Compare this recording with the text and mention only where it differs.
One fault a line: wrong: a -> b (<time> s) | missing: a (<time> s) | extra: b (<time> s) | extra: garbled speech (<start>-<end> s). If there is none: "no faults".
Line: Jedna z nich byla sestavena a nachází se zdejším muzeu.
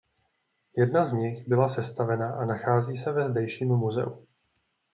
extra: ve (3.1 s)